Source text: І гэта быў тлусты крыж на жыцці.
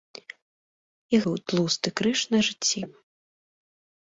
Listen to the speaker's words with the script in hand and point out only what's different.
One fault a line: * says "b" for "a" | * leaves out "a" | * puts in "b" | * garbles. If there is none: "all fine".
* leaves out "гэта"